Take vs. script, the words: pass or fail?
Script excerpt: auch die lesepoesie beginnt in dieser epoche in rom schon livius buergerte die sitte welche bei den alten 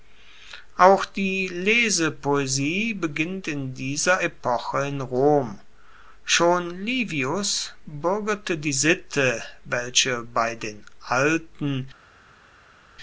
pass